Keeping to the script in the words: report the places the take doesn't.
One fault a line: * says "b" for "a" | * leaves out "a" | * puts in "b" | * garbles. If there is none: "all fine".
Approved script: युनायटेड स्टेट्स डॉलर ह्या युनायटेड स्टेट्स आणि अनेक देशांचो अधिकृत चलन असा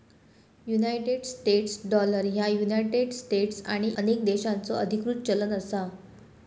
all fine